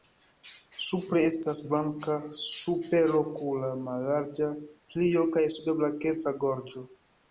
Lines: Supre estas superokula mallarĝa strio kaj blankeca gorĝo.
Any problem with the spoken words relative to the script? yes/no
yes